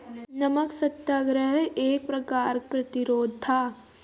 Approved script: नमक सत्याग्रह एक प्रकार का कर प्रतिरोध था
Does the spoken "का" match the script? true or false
false